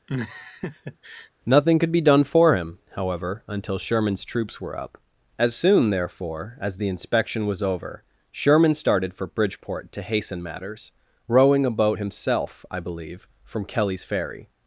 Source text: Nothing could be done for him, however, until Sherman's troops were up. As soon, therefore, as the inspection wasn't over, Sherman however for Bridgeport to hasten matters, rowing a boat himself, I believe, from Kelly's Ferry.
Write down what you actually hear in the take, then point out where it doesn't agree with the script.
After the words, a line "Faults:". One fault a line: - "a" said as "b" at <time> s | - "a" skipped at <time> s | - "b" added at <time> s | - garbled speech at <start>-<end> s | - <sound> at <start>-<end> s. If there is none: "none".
Nothing could be done for him, however, until Sherman's troops were up. As soon, therefore, as the inspection was over, Sherman started for Bridgeport to hasten matters, rowing a boat himself, I believe, from Kelly's Ferry.
Faults:
- laugh at 0.1-1.3 s
- "wasn't" said as "was" at 7.5 s
- "however" said as "started" at 8.7 s